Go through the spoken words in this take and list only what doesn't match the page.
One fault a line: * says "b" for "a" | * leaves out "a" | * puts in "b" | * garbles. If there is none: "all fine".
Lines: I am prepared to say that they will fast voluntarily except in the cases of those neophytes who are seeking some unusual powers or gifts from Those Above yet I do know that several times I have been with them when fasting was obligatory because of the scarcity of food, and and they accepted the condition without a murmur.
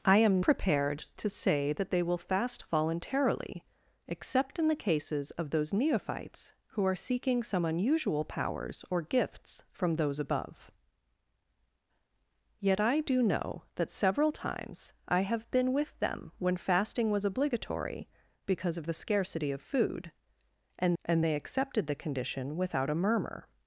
all fine